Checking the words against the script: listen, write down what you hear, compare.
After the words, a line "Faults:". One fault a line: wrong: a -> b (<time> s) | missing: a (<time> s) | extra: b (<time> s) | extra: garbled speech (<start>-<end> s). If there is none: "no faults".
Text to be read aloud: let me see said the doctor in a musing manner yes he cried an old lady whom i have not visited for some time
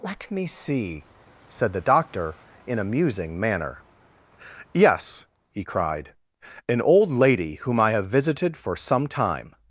let me see said the doctor in a musing manner yes he cried an old lady whom i have visited for some time
Faults:
missing: not (8.1 s)